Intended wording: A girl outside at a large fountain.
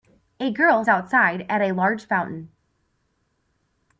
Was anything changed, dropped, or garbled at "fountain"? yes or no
no